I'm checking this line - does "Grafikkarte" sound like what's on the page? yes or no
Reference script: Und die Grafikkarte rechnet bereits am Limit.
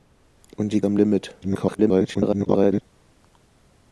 no